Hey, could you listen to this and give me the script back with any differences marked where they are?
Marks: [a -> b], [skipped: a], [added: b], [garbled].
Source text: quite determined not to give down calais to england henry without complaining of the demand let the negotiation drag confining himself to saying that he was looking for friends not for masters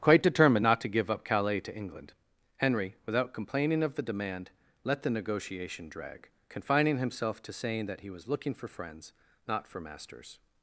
quite determined not to give [down -> up] calais to england henry without complaining of the demand let the negotiation drag confining himself to saying that he was looking for friends not for masters